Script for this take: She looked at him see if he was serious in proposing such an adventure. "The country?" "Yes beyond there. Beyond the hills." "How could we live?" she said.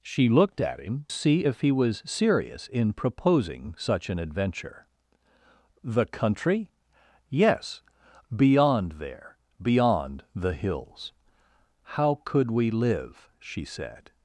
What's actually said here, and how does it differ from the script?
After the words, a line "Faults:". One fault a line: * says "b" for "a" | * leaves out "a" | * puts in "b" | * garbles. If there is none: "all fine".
She looked at him see if he was serious in proposing such an adventure. "The country?" "Yes beyond there. Beyond the hills." "How could we live?" she said.
Faults:
all fine